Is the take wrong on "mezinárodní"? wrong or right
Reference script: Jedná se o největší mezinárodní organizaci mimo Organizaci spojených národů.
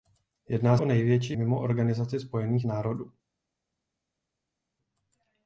wrong